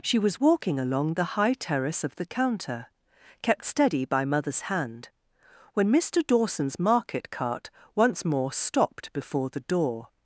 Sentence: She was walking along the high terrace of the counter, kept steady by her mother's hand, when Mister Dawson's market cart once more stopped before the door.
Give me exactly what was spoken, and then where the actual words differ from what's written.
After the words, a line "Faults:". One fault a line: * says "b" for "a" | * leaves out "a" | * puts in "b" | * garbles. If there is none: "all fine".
She was walking along the high terrace of the counter, kept steady by mother's hand, when Mister Dawson's market cart once more stopped before the door.
Faults:
* leaves out "her"